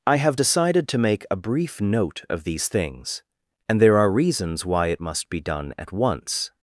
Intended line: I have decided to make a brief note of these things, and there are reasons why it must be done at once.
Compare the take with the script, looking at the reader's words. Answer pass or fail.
pass